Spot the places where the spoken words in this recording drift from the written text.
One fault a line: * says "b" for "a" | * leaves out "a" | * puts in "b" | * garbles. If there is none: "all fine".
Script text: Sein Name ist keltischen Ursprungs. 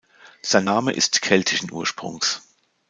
all fine